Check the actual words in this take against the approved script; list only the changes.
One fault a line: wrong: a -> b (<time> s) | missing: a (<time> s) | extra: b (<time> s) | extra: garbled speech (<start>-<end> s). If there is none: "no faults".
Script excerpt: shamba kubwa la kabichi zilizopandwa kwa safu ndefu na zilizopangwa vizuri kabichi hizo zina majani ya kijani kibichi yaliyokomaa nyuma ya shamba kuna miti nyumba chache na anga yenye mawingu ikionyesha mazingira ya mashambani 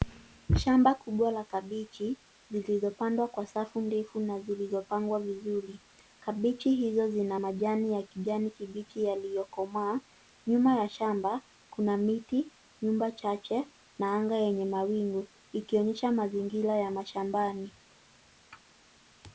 no faults